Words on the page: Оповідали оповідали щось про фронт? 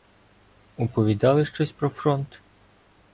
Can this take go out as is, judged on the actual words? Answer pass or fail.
fail